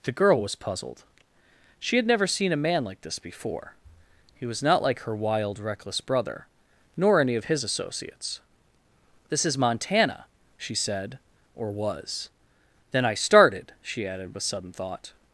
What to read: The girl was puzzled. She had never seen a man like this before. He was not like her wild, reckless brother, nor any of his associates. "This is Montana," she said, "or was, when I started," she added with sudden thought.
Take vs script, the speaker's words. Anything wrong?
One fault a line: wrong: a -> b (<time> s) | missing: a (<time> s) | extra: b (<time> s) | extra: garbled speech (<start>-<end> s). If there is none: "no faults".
wrong: when -> then (12.9 s)